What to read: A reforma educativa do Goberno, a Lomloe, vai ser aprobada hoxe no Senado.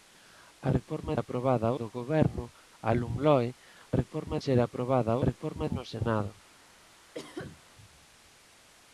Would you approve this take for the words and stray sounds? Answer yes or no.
no